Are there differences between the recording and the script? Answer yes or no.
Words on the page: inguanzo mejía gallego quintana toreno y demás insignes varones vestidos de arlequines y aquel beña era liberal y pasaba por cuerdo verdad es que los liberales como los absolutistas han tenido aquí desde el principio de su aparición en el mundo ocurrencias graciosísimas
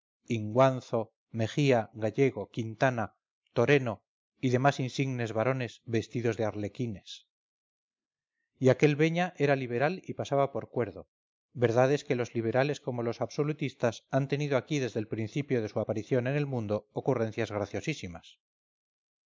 no